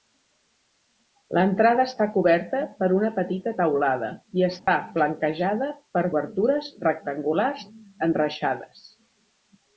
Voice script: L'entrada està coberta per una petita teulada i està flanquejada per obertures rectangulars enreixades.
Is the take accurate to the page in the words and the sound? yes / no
no